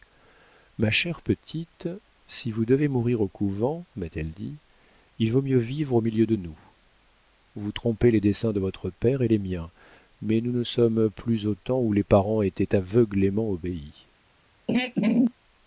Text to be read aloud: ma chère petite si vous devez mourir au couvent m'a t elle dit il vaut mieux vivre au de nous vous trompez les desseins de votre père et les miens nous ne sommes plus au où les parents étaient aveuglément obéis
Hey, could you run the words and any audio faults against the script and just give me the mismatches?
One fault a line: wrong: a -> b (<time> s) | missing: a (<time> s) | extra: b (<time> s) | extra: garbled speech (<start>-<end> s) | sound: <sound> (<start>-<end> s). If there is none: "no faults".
extra: milieu (6.0 s)
extra: mais (10.2 s)
extra: temps (11.6 s)
sound: throat clearing (14.7-15.3 s)